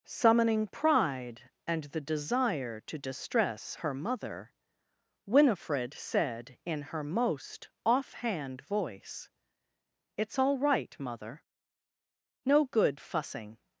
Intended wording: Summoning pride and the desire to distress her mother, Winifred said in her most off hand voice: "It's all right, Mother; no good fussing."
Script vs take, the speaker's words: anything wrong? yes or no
no